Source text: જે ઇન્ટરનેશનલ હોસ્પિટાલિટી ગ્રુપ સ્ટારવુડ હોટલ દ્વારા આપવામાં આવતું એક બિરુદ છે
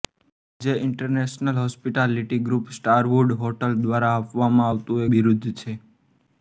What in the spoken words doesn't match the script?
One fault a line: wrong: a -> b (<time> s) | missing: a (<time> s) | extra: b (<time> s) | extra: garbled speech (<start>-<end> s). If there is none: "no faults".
missing: એક (5.1 s)